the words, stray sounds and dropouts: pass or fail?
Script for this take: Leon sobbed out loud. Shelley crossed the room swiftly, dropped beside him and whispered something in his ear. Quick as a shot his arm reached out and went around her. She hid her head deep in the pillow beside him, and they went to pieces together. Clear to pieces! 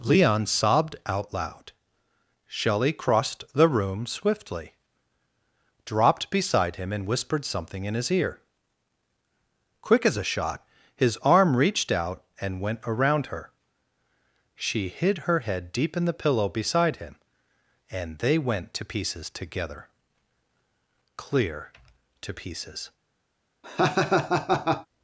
fail